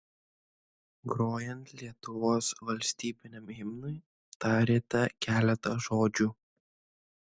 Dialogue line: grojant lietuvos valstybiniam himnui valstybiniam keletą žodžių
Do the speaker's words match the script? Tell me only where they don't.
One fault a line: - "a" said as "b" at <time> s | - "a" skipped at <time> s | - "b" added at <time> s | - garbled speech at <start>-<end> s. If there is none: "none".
- "valstybiniam" said as "tarėte" at 4.5 s